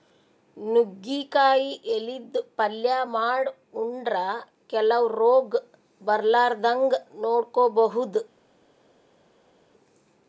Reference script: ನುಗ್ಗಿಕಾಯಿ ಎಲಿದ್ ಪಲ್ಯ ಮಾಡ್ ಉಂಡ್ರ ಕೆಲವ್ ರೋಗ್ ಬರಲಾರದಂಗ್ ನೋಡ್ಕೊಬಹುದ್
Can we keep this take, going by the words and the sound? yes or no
yes